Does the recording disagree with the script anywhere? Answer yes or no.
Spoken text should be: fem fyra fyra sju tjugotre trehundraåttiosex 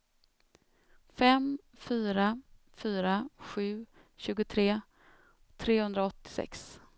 no